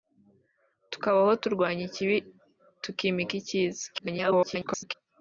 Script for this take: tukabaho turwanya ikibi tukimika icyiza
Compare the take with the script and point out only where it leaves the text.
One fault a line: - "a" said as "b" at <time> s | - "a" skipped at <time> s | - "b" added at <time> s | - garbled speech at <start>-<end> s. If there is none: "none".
- garbled speech at 3.9-4.9 s